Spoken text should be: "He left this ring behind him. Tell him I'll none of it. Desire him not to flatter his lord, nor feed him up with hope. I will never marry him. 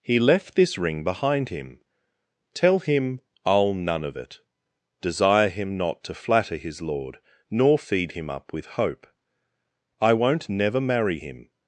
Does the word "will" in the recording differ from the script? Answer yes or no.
yes